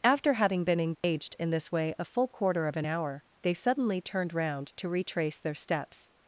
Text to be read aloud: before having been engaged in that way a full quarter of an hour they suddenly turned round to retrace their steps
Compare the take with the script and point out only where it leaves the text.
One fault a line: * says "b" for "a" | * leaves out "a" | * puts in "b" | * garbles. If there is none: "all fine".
* says "after" for "before"
* says "this" for "that"